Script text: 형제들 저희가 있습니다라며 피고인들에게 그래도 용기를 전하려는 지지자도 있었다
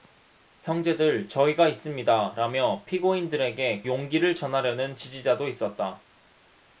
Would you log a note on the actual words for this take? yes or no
yes